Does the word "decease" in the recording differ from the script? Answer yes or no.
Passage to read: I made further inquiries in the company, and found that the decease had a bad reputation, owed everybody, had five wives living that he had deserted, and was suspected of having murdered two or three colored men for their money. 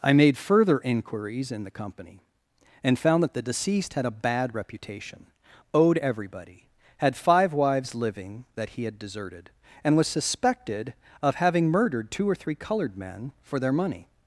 yes